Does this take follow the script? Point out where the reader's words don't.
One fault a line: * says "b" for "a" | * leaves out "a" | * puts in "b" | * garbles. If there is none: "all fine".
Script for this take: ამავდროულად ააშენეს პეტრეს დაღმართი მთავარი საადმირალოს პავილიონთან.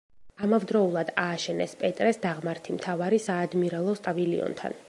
all fine